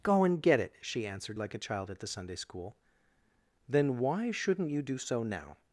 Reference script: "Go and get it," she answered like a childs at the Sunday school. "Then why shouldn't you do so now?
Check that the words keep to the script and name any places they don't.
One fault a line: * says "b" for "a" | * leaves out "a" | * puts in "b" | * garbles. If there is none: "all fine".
* says "child" for "childs"